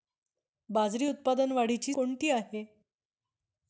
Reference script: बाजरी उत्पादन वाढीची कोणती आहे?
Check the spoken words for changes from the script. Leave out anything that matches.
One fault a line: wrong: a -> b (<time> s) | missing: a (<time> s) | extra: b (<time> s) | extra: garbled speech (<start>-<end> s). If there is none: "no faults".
no faults